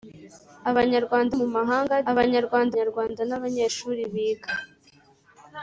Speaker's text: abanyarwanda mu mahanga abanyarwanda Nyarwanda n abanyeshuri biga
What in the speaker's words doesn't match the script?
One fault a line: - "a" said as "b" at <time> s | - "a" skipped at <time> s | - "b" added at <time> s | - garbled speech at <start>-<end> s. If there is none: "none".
none